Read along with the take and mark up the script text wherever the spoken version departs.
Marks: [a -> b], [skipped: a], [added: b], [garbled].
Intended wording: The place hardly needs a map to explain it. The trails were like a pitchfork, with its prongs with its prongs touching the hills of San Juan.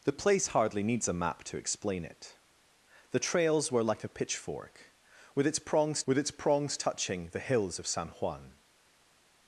The place hardly needs a map to explain it. The trails were like a pitchfork, with its prongs with its prongs touching the hills of San Juan.